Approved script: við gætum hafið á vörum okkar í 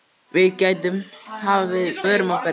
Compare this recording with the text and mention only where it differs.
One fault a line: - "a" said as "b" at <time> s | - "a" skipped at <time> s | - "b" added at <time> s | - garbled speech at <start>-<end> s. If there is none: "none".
none